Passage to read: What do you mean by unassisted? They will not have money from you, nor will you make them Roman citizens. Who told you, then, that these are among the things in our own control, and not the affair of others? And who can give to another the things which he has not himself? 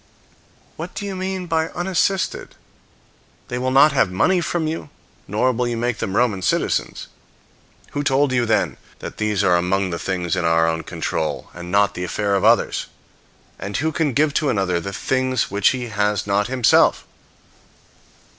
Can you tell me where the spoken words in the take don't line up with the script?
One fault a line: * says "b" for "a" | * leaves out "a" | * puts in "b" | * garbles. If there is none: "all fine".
all fine